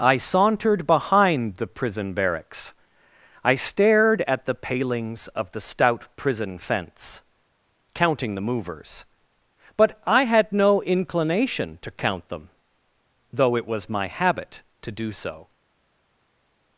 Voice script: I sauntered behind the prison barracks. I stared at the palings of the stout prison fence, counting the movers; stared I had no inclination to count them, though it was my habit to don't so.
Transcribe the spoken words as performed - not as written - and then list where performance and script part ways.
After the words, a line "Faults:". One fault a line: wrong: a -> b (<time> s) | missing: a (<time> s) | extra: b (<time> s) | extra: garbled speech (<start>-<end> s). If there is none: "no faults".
I sauntered behind the prison barracks. I stared at the palings of the stout prison fence, counting the movers; but I had no inclination to count them, though it was my habit to do so.
Faults:
wrong: stared -> but (9.7 s)
wrong: don't -> do (14.9 s)